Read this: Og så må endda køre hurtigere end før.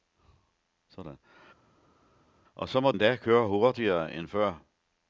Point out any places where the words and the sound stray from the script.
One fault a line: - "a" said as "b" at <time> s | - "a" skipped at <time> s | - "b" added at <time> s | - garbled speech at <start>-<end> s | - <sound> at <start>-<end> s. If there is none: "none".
none